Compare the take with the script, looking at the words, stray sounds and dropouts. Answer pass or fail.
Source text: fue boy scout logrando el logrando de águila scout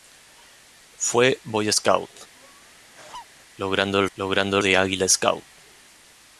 fail